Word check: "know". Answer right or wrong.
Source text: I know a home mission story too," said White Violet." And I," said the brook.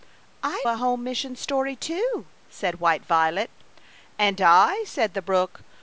wrong